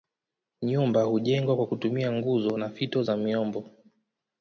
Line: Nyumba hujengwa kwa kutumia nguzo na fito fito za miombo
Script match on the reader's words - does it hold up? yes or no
no